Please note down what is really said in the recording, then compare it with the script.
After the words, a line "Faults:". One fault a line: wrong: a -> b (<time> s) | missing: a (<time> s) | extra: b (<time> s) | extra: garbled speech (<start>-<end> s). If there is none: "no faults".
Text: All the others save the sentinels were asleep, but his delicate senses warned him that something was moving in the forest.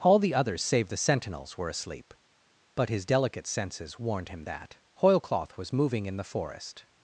All the others save the sentinels were asleep, but his delicate senses warned him that hoilcloth was moving in the forest.
Faults:
wrong: something -> hoilcloth (5.0 s)